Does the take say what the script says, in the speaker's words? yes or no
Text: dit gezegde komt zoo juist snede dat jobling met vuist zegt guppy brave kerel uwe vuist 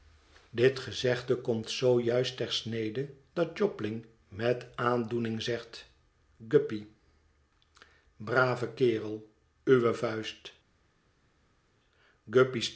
no